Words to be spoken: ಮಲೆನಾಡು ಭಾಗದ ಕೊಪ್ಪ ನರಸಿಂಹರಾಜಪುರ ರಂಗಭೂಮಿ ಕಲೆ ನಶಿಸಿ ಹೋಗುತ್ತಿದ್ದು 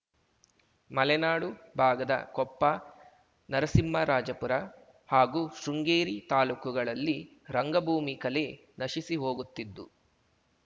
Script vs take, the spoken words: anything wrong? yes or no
yes